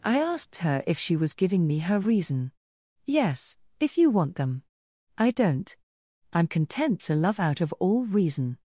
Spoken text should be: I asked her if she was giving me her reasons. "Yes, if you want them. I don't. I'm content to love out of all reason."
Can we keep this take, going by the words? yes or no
no